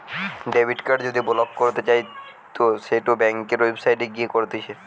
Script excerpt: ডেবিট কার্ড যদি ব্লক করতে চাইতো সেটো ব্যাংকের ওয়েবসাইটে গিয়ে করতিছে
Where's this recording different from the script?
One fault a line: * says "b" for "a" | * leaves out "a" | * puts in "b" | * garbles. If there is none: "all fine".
all fine